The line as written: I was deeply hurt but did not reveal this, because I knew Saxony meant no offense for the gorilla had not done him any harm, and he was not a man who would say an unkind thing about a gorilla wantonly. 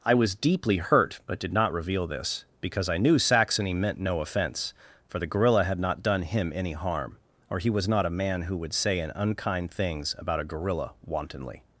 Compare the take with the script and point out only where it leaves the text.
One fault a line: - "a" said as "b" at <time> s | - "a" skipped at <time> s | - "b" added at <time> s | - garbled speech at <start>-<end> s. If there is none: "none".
- "and" said as "or" at 7.5 s
- "thing" said as "things" at 9.7 s